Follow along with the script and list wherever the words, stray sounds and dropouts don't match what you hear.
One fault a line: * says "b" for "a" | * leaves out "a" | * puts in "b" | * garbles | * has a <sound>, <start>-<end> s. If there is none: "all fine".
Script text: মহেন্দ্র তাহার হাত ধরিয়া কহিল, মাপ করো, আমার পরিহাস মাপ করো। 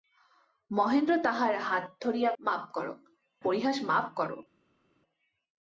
* leaves out "কহিল"
* leaves out "আমার"